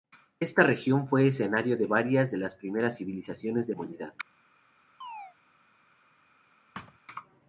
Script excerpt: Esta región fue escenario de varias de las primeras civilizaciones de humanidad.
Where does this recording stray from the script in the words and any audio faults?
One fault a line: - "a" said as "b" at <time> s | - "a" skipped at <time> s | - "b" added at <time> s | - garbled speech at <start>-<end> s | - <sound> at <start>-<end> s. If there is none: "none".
- chirp at 5.0-5.4 s
- thud at 6.7-7.0 s